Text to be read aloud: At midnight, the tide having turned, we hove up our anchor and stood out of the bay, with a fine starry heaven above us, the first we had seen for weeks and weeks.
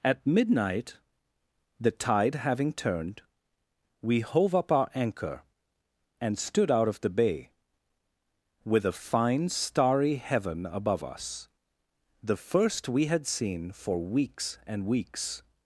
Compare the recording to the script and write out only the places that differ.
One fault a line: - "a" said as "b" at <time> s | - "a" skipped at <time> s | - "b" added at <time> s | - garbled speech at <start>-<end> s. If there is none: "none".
none